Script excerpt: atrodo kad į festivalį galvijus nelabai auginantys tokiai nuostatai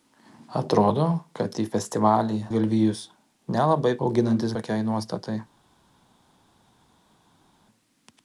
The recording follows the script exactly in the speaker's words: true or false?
true